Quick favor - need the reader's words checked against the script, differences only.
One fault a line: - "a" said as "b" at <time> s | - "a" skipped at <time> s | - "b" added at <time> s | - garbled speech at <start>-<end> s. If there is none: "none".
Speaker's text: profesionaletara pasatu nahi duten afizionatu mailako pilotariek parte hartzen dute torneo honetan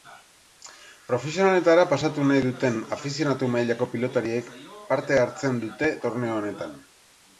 none